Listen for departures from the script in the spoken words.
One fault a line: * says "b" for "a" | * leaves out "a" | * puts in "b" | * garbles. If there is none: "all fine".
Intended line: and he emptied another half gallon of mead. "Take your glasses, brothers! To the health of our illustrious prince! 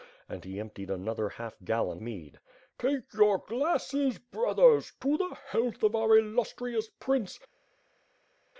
* leaves out "of"